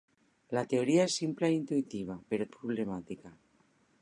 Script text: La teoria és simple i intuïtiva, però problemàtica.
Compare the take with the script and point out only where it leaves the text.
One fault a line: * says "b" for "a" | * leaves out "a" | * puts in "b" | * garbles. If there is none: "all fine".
all fine